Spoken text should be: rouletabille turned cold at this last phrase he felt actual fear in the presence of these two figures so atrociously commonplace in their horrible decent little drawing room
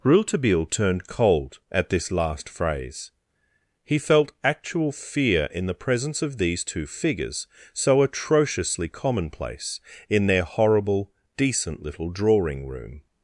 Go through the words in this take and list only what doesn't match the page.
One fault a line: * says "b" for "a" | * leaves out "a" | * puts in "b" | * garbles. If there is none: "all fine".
all fine